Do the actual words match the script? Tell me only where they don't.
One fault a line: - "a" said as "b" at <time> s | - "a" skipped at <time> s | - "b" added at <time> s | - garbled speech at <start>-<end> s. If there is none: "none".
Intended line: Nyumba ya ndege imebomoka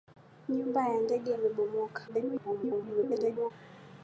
- garbled speech at 2.1-3.5 s